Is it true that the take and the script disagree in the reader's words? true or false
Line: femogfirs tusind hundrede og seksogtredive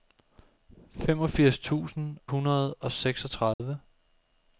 false